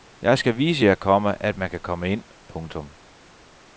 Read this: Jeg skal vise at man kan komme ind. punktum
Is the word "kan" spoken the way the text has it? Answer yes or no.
yes